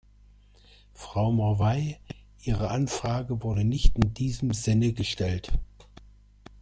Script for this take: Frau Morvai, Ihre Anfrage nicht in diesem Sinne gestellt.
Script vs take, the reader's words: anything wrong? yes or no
yes